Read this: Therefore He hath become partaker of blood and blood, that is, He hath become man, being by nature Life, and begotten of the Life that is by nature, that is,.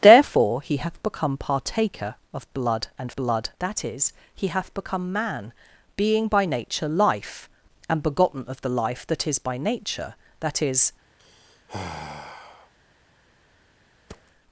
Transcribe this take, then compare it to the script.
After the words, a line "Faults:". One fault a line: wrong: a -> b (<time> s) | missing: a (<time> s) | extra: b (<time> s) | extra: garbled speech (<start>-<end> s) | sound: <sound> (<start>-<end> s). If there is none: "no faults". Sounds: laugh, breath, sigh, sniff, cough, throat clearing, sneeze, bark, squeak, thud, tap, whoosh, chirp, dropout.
Therefore He hath become partaker of blood and blood, that is, He hath become man, being by nature Life, and begotten of the Life that is by nature, that is,.
Faults:
sound: sigh (11.2-12.7 s)
sound: thud (14.1-14.3 s)